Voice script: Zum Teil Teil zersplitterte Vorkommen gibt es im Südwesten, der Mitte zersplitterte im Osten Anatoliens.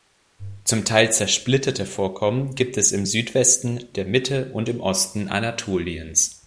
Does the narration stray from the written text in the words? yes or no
yes